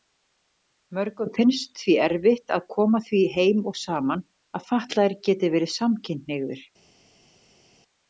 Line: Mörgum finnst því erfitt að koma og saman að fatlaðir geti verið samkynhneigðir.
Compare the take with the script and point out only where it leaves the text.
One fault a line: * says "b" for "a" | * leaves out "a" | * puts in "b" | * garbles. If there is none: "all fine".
* puts in "því heim"